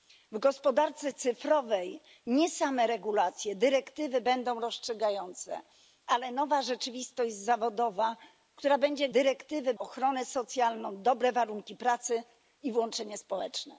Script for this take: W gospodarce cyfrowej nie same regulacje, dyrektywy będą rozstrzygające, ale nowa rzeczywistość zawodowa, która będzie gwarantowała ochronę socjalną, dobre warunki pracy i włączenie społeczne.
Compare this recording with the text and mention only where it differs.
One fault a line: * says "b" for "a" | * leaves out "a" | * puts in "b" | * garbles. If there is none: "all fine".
* says "dyrektywy" for "gwarantowała"